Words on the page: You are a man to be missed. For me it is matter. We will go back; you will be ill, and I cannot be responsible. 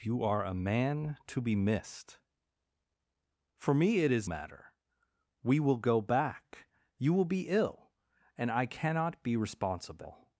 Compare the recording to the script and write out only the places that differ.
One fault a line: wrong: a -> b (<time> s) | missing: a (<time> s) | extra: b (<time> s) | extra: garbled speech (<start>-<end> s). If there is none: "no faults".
no faults